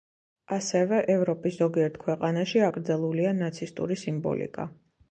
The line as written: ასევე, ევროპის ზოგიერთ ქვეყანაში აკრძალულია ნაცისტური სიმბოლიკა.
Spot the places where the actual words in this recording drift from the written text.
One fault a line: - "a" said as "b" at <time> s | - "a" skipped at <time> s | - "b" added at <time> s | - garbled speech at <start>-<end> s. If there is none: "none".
none